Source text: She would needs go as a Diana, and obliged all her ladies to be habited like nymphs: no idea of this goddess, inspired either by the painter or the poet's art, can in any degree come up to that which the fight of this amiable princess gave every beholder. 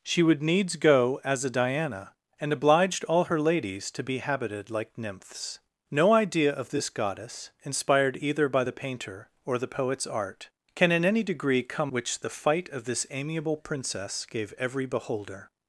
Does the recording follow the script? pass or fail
fail